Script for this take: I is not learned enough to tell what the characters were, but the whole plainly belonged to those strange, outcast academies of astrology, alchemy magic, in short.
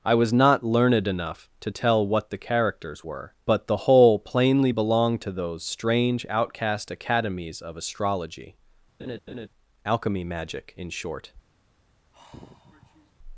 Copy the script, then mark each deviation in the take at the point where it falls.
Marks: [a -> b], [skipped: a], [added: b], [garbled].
I [is -> was] not learned enough to tell what the characters were, but the whole plainly belonged to those strange, outcast academies of astrology, alchemy magic, in short.